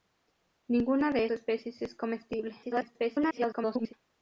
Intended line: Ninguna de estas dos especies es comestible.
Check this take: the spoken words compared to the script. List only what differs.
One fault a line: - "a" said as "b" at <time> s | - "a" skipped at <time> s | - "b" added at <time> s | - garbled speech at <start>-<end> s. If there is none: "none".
- "estas dos" skipped at 1.2 s
- garbled speech at 2.6-3.9 s